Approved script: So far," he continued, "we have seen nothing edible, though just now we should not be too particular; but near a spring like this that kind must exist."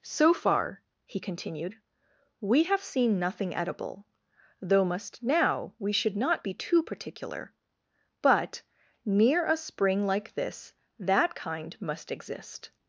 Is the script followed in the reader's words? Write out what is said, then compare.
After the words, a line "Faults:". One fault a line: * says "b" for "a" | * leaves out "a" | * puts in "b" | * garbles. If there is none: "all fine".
So far," he continued, "we have seen nothing edible, though must now we should not be too particular; but near a spring like this that kind must exist."
Faults:
* says "must" for "just"